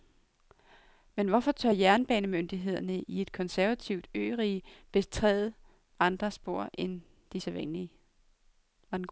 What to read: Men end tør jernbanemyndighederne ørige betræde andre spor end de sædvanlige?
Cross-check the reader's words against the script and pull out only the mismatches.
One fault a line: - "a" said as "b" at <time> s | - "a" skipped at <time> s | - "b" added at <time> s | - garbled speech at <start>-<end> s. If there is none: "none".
- "end" said as "hvorfor" at 1.3 s
- "i et konservativt" added at 3.0 s